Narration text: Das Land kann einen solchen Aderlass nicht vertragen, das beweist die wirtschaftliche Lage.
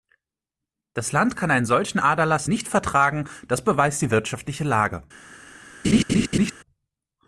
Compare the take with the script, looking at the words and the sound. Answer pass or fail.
fail